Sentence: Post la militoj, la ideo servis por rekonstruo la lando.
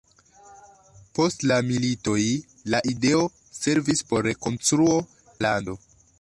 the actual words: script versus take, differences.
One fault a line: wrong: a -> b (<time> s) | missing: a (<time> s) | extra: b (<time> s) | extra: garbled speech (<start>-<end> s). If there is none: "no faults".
no faults